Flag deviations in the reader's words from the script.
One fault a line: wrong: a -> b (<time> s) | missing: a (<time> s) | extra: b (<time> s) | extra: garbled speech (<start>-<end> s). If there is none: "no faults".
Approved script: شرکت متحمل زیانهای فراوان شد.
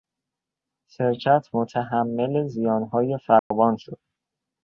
no faults